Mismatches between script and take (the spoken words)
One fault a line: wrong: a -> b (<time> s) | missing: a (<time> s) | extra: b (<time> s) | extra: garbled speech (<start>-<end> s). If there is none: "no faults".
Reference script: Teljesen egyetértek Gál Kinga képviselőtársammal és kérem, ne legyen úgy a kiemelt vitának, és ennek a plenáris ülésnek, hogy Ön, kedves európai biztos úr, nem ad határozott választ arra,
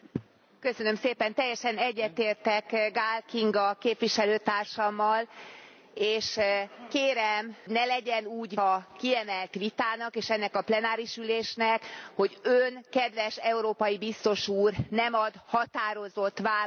no faults